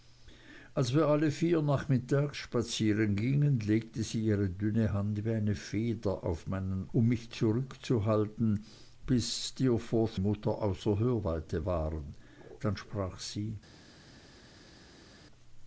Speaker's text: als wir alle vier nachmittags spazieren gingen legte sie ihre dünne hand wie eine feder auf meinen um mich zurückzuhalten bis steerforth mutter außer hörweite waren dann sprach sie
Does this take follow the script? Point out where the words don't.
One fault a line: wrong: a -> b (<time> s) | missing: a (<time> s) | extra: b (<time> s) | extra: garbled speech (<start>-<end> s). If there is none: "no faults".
no faults